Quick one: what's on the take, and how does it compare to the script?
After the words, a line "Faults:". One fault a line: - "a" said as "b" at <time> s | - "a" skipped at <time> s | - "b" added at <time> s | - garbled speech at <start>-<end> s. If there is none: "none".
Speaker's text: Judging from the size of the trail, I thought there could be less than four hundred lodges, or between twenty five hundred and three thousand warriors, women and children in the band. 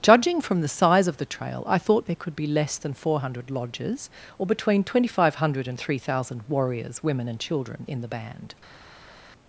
Judging from the size of the trail, I thought there could be less than four hundred lodges, or between twenty five hundred and three thousand warriors, women and children in the band.
Faults:
none